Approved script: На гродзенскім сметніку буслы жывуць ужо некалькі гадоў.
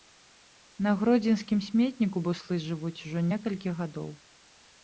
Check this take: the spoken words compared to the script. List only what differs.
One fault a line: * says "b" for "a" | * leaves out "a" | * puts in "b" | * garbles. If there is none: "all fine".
all fine